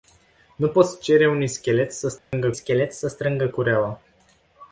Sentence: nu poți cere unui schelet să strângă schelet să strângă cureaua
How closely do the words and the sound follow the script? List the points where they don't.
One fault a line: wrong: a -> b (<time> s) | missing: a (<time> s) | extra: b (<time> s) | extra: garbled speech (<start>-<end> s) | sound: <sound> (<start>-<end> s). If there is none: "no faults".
sound: dropout (2.2-2.3 s)